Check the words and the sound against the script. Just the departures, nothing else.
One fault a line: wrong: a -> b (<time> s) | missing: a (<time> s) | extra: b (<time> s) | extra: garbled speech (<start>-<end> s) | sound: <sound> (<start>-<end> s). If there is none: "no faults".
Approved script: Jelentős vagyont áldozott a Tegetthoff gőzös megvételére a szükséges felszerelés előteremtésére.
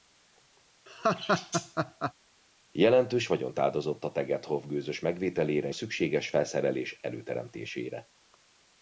sound: laugh (0.9-2.1 s)